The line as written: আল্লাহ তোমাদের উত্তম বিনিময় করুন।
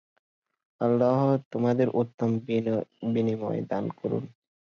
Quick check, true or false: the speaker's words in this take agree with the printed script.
false